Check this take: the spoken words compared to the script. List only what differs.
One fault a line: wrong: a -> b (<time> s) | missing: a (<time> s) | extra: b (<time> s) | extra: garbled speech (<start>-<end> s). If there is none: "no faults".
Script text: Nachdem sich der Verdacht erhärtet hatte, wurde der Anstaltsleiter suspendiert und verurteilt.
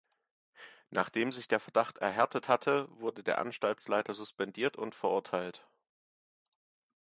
no faults